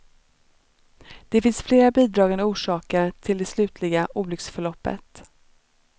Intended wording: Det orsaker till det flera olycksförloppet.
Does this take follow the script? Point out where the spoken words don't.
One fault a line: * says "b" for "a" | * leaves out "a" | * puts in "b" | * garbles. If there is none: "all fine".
* puts in "finns flera bidragande"
* says "slutliga" for "flera"